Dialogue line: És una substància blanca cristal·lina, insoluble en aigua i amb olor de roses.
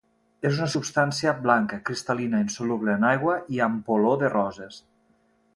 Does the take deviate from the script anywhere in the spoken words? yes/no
no